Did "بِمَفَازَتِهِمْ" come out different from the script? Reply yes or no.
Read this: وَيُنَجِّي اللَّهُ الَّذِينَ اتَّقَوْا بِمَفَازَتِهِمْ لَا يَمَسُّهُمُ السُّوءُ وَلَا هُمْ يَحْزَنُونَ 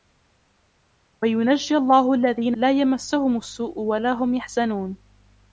yes